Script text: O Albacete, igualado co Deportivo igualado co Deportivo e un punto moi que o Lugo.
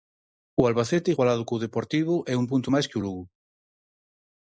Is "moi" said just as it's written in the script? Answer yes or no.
no